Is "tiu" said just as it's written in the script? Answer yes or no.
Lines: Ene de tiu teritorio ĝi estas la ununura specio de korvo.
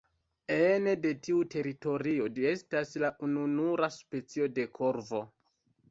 yes